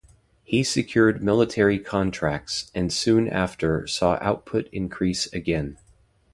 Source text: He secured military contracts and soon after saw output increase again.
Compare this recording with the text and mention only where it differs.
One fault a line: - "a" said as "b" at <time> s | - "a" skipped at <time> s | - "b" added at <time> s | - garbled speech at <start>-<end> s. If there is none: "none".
none